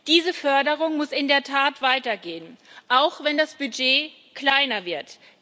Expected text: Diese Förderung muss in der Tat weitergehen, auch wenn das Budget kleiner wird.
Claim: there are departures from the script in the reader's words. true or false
false